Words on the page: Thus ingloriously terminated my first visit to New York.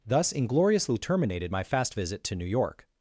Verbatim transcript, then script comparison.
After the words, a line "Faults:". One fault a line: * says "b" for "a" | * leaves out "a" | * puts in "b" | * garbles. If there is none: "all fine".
Thus ingloriously terminated my fast visit to New York.
Faults:
* says "fast" for "first"